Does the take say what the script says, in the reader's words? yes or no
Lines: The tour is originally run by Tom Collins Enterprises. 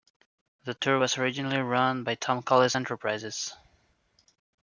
no